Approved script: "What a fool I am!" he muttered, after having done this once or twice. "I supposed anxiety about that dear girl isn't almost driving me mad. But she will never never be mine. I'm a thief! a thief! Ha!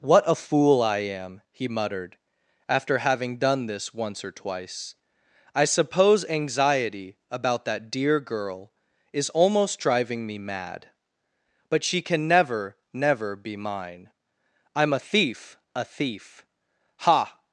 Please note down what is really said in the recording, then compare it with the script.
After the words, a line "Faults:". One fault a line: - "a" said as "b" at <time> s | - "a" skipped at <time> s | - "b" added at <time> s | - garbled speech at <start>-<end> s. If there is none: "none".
"What a fool I am!" he muttered, after having done this once or twice. "I suppose anxiety about that dear girl is almost driving me mad. But she can never never be mine. I'm a thief! a thief! Ha!
Faults:
- "supposed" said as "suppose" at 5.7 s
- "isn't" said as "is" at 9.1 s
- "will" said as "can" at 12.0 s